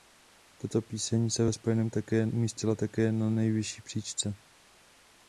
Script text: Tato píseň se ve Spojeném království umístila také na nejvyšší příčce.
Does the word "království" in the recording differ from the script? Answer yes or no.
yes